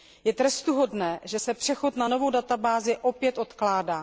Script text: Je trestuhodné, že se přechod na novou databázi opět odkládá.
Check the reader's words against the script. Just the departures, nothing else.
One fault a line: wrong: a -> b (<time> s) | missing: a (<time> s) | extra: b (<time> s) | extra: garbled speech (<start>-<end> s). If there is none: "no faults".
no faults